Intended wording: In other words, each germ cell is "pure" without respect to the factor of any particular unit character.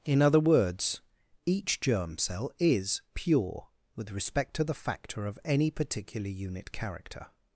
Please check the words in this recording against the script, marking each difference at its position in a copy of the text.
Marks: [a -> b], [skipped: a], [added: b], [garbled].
In other words, each germ cell is "pure" [without -> with] respect to the factor of any particular unit character.